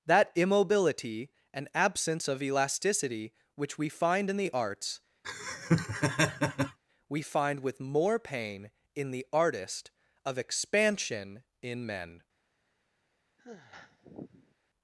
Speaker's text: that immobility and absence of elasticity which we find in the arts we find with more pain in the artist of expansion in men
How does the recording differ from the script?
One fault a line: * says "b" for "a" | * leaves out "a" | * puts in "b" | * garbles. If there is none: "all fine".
all fine